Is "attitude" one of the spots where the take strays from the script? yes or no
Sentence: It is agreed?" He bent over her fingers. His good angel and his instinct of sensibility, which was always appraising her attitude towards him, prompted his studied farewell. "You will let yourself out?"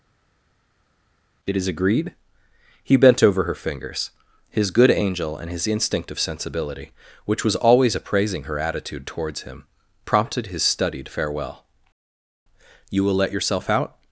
no